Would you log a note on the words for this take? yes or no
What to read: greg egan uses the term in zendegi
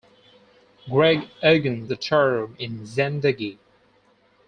yes